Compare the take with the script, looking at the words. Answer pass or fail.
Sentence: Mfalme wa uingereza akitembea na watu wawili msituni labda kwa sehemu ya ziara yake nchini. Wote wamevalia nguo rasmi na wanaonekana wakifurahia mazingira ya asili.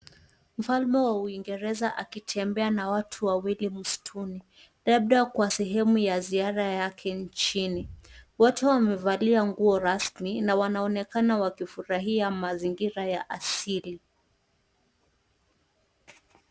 pass